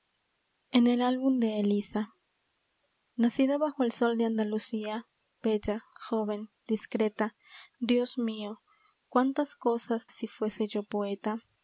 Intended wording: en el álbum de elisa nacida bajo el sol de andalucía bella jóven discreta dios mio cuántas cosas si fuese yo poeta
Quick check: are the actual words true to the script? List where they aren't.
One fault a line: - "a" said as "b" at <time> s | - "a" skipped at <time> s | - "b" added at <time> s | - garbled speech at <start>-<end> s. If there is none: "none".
none